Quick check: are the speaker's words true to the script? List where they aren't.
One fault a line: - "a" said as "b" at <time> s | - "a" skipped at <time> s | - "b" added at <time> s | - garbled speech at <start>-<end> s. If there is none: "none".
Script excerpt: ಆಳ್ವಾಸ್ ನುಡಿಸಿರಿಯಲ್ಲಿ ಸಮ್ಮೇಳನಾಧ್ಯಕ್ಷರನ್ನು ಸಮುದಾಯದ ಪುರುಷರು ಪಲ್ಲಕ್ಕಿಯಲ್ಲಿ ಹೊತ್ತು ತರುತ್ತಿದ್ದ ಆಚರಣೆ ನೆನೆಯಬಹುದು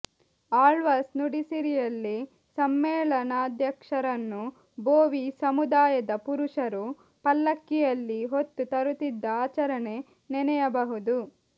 - "ಬೋವಿ" added at 4.8 s